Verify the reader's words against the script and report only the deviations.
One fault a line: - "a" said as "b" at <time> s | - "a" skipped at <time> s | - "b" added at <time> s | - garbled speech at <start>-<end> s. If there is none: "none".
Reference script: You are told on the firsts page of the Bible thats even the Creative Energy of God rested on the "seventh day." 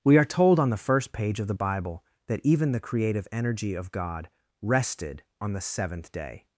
- "You" said as "We" at 0.0 s
- "firsts" said as "first" at 0.8 s
- "thats" said as "that" at 2.3 s